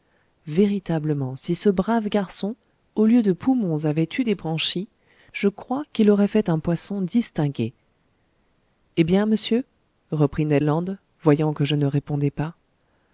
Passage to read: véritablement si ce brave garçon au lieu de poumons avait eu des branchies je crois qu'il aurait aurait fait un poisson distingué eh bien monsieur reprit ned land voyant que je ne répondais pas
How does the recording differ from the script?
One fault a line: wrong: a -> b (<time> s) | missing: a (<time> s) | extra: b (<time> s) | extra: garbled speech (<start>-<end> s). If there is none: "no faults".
missing: aurait (6.3 s)